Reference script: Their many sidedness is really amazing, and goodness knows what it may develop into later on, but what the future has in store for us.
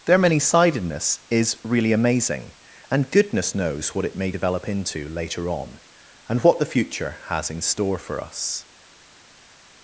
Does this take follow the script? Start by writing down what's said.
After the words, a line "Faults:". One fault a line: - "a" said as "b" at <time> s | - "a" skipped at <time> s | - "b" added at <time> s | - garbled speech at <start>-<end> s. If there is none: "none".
Their many sidedness is really amazing, and goodness knows what it may develop into later on, and what the future has in store for us.
Faults:
- "but" said as "and" at 6.3 s